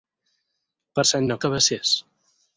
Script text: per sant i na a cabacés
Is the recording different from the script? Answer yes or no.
no